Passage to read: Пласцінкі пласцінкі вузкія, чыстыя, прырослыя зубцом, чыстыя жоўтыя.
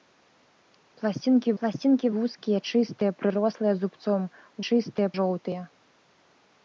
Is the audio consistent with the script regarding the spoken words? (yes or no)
yes